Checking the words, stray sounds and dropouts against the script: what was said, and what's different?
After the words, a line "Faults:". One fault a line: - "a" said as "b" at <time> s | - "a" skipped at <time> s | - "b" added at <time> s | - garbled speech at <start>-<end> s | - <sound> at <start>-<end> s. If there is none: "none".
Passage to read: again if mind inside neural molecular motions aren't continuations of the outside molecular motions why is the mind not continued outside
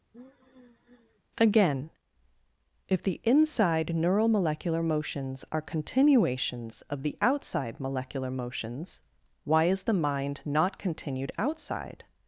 again if the inside neural molecular motions are continuations of the outside molecular motions why is the mind not continued outside
Faults:
- sigh at 0.1-1.2 s
- "mind" said as "the" at 3.0 s
- "aren't" said as "are" at 5.5 s